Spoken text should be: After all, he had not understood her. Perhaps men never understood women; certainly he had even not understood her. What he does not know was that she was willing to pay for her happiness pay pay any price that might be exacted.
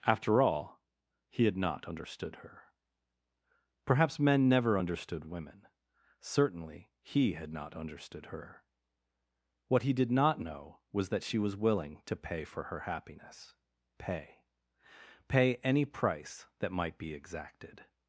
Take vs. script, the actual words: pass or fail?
fail